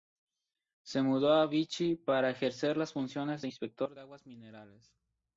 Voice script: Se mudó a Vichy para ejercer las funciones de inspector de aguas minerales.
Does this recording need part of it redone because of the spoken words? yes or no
no